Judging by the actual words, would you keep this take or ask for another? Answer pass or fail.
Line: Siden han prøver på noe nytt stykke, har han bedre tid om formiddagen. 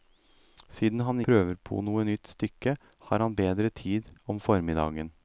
pass